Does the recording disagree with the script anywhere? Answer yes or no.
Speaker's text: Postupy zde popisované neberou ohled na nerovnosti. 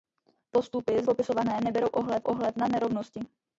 yes